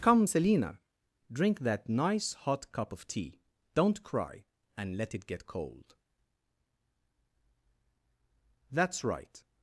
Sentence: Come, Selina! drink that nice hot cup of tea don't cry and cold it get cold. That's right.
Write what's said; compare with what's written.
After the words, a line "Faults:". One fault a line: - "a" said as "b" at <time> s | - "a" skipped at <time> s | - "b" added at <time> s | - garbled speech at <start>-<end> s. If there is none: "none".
Come, Selina! drink that nice hot cup of tea don't cry and let it get cold. That's right.
Faults:
- "cold" said as "let" at 4.9 s